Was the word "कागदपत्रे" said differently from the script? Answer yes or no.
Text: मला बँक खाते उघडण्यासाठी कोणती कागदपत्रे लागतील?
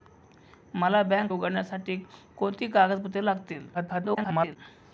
no